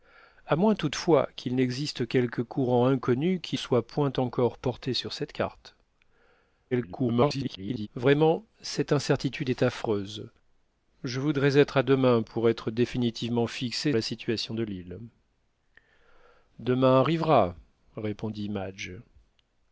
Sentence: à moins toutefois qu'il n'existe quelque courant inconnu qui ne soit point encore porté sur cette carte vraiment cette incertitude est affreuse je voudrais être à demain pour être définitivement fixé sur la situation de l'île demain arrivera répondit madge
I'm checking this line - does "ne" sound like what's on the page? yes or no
no